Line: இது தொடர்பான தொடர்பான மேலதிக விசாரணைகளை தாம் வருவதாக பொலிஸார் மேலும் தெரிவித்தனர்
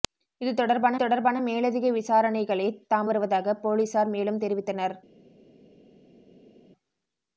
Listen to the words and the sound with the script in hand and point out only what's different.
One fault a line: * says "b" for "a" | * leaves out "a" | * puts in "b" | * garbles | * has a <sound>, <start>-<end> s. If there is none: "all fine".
all fine